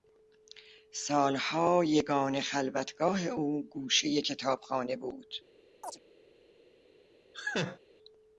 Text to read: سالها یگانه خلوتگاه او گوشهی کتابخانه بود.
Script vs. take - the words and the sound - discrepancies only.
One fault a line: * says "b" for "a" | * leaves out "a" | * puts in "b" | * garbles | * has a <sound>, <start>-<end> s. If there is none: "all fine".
* has a chirp, 5.8-6.0 s
* has a laugh, 7.3-7.8 s